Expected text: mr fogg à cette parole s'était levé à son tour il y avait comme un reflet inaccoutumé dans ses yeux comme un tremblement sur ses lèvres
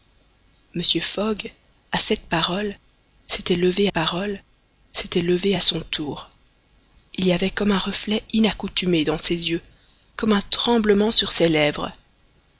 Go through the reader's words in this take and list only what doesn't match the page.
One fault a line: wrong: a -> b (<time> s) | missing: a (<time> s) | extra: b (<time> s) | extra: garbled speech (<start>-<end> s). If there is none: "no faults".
extra: parole s'était levé (3.9 s)